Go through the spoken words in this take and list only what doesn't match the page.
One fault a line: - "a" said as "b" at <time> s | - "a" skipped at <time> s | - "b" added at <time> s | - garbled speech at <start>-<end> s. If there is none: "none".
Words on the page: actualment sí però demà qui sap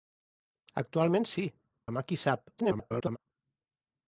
- "però" skipped at 1.4 s
- garbled speech at 2.6-3.2 s